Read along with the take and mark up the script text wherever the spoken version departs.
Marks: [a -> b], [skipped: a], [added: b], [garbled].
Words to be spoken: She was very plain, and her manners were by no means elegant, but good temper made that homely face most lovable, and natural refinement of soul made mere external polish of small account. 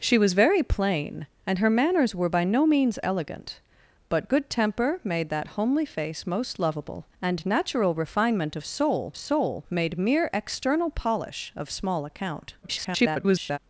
She was very plain, and her manners were by no means elegant, but good temper made that homely face most lovable, and natural refinement of soul [added: soul] made mere external polish of small account. [garbled]